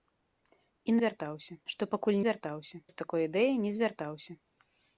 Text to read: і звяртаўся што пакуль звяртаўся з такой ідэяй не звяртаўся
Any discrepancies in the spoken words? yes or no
no